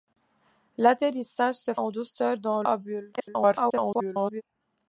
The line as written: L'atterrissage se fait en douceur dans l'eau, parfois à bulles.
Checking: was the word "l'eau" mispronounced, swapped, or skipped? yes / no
yes